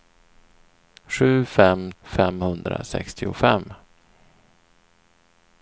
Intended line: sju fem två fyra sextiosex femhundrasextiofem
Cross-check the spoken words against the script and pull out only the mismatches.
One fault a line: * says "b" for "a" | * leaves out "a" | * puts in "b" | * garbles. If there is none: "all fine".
* leaves out "två fyra sextiosex"